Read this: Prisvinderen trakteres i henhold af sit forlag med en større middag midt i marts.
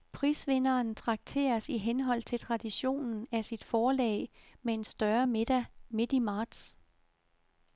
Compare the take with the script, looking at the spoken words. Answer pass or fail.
fail